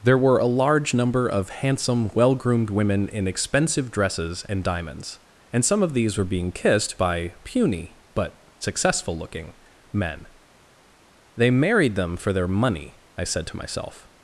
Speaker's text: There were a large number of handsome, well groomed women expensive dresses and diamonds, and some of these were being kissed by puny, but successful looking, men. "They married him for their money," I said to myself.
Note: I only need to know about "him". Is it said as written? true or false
false